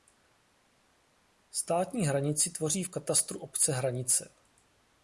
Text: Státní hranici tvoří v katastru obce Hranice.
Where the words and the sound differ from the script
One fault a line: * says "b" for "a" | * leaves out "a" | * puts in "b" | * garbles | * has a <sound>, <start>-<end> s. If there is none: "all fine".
all fine